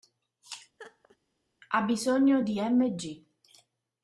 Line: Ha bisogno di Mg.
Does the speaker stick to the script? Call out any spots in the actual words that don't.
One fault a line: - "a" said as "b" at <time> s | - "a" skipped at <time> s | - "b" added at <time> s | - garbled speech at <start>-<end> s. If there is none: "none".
none